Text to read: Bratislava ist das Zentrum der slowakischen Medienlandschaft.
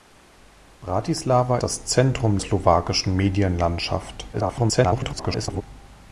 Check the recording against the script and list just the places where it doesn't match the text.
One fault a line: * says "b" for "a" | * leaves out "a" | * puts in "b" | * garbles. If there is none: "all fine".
* leaves out "ist"
* leaves out "der"
* garbles